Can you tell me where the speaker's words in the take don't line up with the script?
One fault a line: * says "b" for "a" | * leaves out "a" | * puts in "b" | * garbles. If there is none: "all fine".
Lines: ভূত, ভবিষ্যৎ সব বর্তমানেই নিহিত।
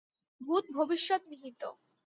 * leaves out "সব বর্তমানেই"